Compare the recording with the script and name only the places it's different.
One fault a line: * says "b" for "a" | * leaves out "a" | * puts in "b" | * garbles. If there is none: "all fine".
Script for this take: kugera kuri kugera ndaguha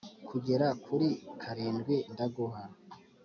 * says "karindwi" for "kugera"